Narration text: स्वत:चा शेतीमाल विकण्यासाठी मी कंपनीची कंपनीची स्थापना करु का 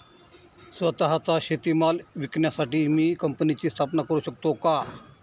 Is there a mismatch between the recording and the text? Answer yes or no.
yes